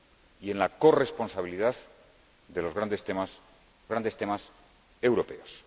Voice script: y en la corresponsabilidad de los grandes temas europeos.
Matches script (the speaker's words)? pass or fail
fail